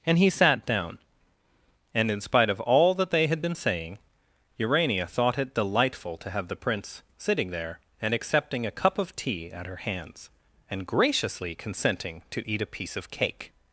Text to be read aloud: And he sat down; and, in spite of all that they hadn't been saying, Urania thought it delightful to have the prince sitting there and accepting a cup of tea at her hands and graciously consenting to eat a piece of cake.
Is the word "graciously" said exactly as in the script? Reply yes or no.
yes